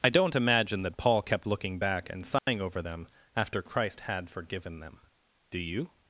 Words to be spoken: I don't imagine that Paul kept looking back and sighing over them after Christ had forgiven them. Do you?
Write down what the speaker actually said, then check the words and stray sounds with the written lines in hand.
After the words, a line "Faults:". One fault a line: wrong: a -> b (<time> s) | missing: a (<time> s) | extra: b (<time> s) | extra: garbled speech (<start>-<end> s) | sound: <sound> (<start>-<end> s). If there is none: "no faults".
I don't imagine that Paul kept looking back and sighing over them after Christ had forgiven them. Do you?
Faults:
sound: dropout (2.4-2.5 s)